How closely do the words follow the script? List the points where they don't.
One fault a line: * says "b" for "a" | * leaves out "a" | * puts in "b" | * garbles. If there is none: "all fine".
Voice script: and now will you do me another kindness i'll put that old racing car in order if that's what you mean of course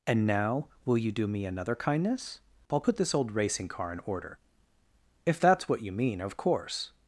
* says "this" for "that"